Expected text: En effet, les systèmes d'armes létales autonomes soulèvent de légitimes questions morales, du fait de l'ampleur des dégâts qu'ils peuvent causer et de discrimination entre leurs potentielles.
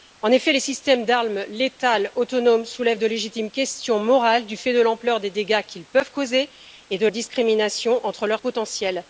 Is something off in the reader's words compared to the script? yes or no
no